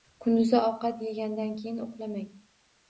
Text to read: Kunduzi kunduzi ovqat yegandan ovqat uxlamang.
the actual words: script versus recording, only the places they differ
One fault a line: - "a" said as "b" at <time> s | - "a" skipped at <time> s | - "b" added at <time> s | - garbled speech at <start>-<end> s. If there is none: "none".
- "kunduzi" skipped at 0.6 s
- "ovqat" said as "keyin" at 1.6 s